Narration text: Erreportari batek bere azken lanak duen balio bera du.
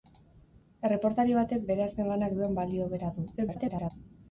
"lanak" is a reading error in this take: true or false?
false